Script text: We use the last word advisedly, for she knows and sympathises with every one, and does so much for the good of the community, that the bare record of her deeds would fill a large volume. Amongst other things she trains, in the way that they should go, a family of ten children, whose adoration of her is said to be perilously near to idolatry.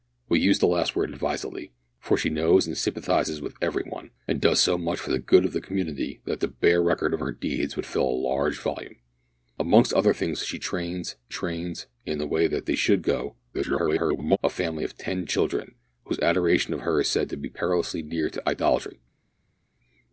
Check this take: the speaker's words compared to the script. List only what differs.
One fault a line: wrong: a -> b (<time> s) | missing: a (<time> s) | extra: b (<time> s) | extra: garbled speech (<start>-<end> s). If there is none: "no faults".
extra: trains (11.3 s)
extra: garbled speech (13.5-14.4 s)